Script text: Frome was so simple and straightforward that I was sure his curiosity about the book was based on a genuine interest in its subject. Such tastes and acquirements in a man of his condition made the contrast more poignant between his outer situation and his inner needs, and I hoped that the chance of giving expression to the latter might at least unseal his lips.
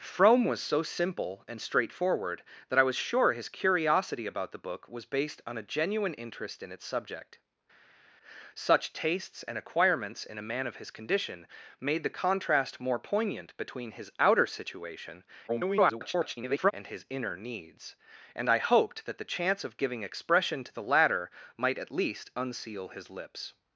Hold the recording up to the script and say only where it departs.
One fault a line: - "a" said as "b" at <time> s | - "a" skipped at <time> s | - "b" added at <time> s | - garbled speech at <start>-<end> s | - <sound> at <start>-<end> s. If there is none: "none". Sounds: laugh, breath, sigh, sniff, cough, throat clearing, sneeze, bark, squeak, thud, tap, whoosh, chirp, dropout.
- garbled speech at 15.5-16.7 s